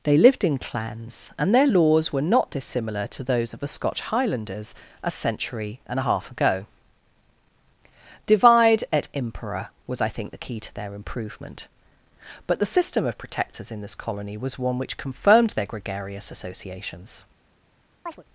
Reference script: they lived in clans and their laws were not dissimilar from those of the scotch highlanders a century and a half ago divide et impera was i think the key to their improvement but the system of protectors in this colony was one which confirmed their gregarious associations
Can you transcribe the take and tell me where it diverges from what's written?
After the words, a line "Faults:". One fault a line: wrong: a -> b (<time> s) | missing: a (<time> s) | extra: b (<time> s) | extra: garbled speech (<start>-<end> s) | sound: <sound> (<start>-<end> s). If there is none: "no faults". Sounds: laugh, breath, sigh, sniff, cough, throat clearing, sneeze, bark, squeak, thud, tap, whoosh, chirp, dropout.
they lived in clans and their laws were not dissimilar to those of the scotch highlanders a century and a half ago divide et impera was i think the key to their improvement but the system of protectors in this colony was one which confirmed their gregarious associations
Faults:
wrong: from -> to (3.1 s)
sound: chirp (18.1-18.2 s)